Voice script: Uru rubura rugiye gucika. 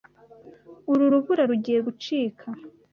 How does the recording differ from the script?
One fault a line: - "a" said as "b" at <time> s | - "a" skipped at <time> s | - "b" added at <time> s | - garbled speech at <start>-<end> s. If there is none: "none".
none